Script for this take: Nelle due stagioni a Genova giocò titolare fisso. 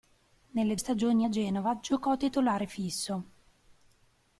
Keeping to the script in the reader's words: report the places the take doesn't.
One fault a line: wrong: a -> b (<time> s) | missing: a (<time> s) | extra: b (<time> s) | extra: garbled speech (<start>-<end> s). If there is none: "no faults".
missing: due (0.8 s)